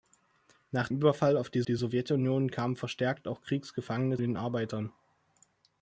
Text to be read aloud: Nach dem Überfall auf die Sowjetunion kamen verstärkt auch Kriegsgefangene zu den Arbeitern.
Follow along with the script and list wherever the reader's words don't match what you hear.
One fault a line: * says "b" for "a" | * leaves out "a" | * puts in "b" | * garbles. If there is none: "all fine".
* leaves out "dem"
* puts in "die"
* leaves out "zu"